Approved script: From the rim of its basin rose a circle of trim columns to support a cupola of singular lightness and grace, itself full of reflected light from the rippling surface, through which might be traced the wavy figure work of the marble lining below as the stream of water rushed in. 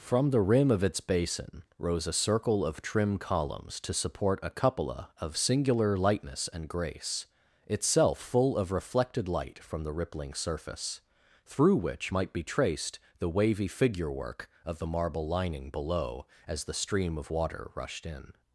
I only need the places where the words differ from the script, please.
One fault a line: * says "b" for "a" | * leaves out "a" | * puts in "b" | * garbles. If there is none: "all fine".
all fine